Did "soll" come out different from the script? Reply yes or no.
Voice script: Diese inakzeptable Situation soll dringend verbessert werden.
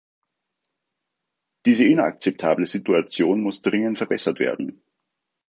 yes